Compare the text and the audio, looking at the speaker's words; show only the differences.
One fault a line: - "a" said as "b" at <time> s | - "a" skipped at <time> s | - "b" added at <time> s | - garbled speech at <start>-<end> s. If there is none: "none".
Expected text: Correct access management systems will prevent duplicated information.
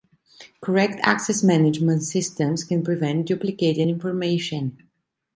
- "will" said as "can" at 2.6 s